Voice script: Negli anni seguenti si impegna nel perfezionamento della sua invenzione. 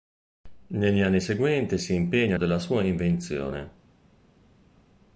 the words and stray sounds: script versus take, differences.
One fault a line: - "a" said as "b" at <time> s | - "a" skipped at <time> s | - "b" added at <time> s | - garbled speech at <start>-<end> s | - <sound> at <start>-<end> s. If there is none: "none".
- "nel perfezionamento" skipped at 2.4 s